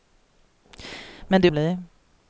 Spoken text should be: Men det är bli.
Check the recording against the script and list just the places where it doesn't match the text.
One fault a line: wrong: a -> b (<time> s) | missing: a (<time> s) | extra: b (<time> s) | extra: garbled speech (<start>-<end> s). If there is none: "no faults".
no faults